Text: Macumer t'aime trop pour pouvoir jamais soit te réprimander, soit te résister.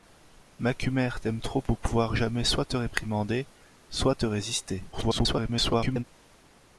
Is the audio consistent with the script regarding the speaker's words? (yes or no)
no